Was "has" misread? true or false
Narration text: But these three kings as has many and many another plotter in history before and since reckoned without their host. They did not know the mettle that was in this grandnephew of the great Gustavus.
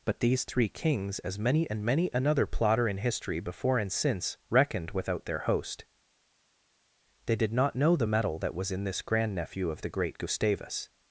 true